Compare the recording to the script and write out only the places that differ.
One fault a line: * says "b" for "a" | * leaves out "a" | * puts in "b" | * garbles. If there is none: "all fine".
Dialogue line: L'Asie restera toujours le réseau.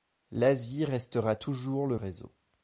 all fine